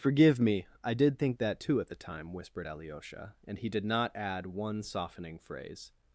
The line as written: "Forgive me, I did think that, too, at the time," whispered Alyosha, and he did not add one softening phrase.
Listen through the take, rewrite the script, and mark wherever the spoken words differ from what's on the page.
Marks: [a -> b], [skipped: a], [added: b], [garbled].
"Forgive me, I did think that, too, at the time," whispered Alyosha, and he did not add one softening phrase.